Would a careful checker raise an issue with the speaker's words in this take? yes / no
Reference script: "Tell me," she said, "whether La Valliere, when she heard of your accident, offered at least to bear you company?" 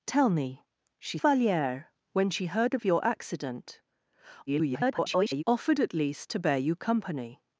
yes